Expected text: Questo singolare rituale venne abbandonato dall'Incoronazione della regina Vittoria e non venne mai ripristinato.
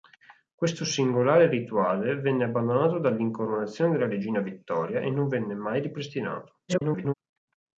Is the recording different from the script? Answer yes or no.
yes